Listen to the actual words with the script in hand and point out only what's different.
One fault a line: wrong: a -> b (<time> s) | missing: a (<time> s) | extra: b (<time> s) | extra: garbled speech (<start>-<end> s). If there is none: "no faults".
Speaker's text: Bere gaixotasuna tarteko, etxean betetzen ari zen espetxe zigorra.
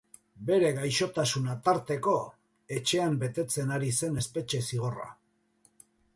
no faults